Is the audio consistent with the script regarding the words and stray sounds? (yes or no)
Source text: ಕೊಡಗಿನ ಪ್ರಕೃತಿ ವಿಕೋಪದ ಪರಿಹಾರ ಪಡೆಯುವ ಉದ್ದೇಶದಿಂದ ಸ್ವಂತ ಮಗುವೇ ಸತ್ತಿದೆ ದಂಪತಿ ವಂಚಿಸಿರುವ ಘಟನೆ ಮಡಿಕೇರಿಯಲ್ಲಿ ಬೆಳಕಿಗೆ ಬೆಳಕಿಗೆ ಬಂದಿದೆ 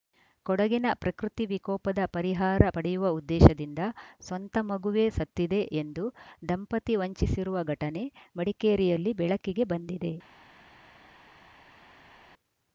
no